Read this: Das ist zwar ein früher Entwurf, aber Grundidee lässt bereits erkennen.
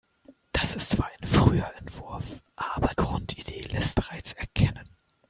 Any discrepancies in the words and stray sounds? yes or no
no